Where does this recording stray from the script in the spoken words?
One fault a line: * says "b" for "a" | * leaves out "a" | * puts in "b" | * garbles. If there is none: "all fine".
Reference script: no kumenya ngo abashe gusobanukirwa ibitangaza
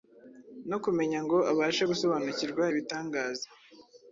all fine